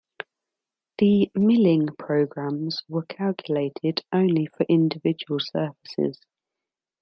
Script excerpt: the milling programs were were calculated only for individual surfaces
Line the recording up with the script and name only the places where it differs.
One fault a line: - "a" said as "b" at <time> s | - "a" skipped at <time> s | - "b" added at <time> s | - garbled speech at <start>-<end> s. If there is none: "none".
- "were" skipped at 3.0 s